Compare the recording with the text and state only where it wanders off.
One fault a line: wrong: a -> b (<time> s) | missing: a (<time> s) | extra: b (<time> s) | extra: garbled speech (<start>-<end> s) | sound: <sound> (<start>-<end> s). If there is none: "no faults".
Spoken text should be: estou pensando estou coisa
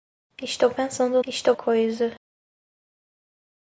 no faults